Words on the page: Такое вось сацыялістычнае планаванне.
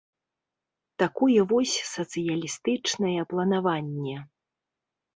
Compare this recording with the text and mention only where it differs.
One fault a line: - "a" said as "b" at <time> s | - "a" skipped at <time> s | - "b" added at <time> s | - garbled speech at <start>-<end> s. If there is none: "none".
none